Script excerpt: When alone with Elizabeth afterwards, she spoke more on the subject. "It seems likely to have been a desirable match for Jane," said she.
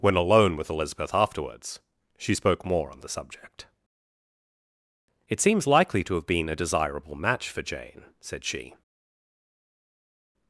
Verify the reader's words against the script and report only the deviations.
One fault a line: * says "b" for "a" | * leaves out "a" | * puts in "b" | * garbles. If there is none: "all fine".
all fine